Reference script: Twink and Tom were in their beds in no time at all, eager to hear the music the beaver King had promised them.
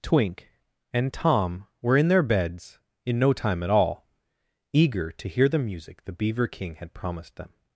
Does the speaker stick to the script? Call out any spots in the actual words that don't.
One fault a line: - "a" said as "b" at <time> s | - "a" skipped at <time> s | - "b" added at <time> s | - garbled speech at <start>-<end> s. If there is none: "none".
none